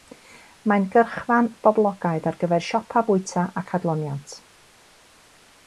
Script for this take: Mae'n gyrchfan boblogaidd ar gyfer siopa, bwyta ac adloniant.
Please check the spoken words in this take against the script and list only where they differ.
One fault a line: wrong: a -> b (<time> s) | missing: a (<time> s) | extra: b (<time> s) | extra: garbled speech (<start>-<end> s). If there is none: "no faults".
no faults